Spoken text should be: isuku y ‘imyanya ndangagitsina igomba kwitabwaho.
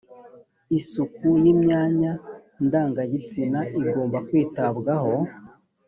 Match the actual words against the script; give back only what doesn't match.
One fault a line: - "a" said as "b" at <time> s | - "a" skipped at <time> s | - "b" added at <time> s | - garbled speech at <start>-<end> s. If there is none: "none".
none